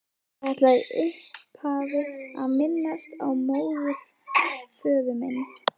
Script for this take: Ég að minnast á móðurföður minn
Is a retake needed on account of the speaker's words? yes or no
yes